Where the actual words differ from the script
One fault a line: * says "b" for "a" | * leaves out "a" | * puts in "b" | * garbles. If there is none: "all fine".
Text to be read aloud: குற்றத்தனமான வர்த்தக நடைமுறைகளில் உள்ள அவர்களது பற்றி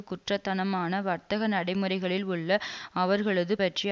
all fine